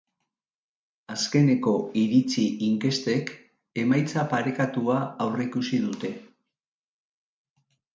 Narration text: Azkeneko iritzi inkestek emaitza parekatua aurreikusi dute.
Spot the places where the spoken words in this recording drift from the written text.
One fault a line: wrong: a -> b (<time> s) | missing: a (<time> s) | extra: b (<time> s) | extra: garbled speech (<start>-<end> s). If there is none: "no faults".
no faults